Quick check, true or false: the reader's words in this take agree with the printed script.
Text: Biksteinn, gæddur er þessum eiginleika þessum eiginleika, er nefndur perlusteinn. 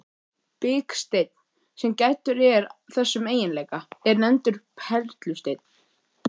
false